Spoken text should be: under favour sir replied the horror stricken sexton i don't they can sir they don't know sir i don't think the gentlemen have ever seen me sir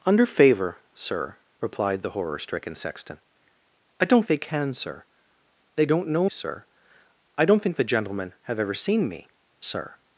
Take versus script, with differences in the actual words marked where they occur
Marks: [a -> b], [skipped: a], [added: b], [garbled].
under favour sir replied the horror stricken sexton i don't they can sir they don't know sir i don't think the gentlemen have ever seen me sir